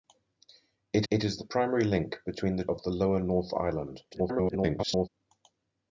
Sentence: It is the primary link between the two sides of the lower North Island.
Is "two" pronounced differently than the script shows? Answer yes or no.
yes